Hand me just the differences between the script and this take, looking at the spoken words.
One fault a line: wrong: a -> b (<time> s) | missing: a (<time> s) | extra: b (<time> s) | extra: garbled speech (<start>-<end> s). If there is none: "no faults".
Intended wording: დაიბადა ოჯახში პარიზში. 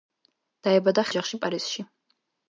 no faults